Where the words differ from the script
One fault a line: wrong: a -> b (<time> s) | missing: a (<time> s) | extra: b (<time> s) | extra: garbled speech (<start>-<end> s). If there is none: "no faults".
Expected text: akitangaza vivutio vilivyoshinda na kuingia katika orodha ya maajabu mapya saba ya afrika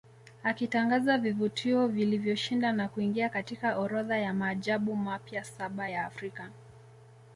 no faults